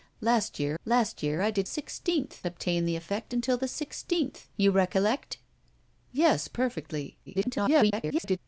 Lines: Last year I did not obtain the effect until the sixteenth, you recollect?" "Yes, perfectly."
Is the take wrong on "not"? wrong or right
wrong